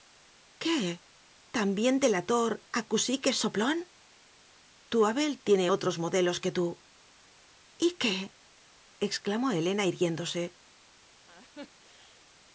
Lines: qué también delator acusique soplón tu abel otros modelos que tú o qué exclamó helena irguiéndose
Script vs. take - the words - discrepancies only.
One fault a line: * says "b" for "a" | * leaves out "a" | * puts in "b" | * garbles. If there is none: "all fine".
* puts in "tiene"
* says "y" for "o"